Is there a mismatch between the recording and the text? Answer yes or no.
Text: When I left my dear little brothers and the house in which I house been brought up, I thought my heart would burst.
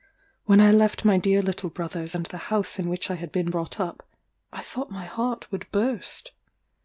yes